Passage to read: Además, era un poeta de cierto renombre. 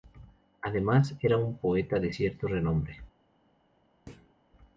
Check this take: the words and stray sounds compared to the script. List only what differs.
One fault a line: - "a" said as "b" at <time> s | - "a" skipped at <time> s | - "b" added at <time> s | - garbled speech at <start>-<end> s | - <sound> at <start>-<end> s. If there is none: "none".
- thud at 4.1-4.3 s